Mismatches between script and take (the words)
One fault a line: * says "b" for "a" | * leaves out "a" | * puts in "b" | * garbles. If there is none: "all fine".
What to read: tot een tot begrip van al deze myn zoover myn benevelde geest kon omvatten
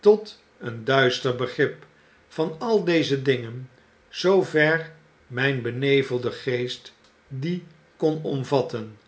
* says "duister" for "tot"
* says "dingen" for "myn"
* puts in "die"